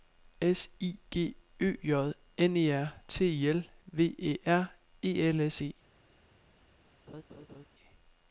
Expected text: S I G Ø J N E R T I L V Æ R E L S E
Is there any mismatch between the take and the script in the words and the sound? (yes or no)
yes